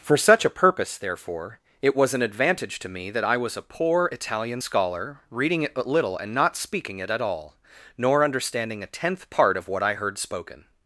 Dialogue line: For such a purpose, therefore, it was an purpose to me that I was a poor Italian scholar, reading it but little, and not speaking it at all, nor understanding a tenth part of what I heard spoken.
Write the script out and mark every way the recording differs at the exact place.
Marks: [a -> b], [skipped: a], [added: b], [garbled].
For such a purpose, therefore, it was an [purpose -> advantage] to me that I was a poor Italian scholar, reading it but little, and not speaking it at all, nor understanding a tenth part of what I heard spoken.